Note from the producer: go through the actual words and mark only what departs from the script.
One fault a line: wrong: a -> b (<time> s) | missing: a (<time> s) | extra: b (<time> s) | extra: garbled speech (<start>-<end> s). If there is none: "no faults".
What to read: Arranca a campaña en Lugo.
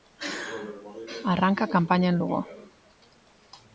no faults